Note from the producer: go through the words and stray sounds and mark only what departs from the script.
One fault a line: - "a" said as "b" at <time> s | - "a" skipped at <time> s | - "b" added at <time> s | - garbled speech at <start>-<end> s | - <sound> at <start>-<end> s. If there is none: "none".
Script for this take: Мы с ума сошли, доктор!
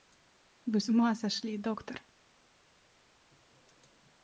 - "Мы" said as "Вы" at 0.7 s